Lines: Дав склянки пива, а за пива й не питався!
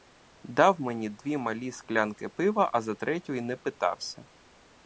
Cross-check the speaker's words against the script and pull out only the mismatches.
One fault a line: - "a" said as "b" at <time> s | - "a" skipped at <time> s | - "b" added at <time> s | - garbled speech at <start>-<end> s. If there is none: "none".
- "мені дві малі" added at 0.8 s
- "пива" said as "третю" at 3.0 s